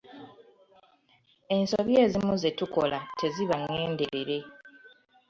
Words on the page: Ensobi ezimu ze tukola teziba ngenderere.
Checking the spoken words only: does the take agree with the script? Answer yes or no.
yes